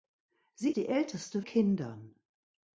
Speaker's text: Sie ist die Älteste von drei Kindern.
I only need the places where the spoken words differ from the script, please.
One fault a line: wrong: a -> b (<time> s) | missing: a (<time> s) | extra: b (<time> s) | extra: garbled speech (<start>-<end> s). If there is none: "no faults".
missing: ist (0.8 s)
missing: von drei (1.4 s)